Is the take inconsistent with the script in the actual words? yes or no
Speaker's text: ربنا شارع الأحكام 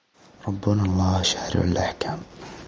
yes